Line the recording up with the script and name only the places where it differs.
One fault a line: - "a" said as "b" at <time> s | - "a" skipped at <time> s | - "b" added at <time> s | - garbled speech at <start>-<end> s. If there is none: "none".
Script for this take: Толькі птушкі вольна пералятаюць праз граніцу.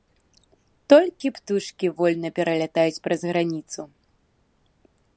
none